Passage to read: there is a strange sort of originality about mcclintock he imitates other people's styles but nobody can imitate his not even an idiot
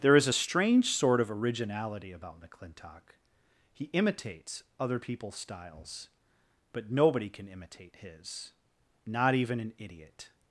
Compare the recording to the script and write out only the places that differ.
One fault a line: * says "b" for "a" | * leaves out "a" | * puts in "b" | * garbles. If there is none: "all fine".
all fine